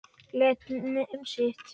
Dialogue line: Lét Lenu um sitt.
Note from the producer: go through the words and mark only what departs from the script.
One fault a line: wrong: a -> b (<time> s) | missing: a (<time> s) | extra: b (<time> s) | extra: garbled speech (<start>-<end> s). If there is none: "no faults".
missing: Lenu (0.6 s)